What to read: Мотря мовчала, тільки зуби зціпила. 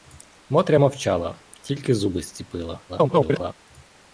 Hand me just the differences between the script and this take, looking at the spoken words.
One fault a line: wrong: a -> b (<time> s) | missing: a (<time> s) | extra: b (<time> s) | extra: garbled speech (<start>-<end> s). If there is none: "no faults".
extra: garbled speech (2.9-3.5 s)